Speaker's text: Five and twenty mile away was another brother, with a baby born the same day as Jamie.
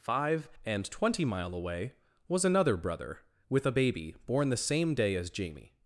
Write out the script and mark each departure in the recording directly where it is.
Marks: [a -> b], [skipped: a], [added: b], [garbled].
Five and twenty mile away was another brother, with a baby born the same day as Jamie.